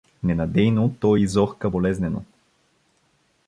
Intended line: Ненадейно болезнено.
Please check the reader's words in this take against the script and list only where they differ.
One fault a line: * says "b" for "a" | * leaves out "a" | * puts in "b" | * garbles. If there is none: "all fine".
* puts in "той изохка"